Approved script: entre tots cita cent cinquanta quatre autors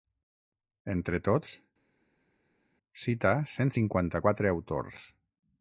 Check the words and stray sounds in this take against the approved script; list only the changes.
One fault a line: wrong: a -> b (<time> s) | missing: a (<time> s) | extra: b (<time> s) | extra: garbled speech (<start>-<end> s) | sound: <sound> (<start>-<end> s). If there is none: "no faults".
no faults